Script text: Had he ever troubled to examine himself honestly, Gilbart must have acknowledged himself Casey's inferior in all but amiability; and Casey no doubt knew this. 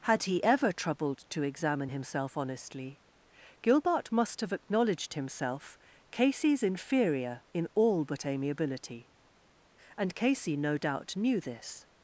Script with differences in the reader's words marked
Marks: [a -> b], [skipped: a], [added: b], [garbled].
Had he ever troubled to examine himself honestly, Gilbart must have acknowledged himself Casey's inferior in all but amiability; and Casey no doubt knew this.